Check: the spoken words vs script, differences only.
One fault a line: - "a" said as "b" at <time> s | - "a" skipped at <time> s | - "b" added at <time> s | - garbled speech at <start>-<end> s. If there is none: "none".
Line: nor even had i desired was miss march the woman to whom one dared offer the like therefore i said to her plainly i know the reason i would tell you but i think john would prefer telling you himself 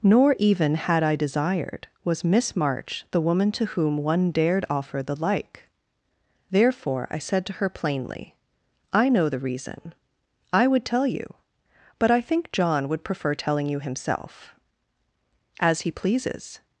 - "as he pleases" added at 15.6 s